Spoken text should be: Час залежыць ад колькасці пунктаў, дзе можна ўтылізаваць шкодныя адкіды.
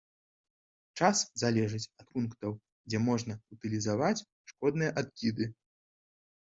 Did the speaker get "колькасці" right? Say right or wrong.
wrong